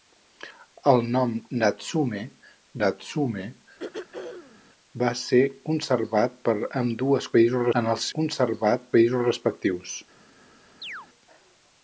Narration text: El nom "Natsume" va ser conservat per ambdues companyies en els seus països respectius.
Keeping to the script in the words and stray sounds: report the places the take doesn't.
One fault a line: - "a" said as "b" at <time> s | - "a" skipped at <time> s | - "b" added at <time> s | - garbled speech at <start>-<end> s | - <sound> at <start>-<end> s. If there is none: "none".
- "natsume" added at 2.8 s
- throat clearing at 3.8-4.6 s
- "companyies" said as "països" at 7.4 s
- "seus" said as "conservat" at 8.2 s
- chirp at 10.8-11.1 s